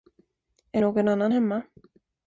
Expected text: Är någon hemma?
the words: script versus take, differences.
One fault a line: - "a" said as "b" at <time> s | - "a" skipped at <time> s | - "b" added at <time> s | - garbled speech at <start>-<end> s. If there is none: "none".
- "annan" added at 1.1 s